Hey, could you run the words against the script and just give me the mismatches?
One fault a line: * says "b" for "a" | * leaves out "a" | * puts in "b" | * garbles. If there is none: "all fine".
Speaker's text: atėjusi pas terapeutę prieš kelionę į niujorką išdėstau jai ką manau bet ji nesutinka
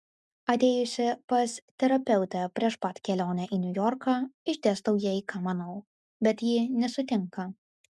* puts in "pat"